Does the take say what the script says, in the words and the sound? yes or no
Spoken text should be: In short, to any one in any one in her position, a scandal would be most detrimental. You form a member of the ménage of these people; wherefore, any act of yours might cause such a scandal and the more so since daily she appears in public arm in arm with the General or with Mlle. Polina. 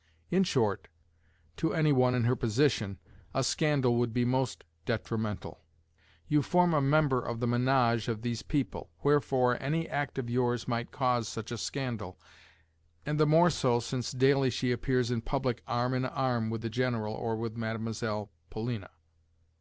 no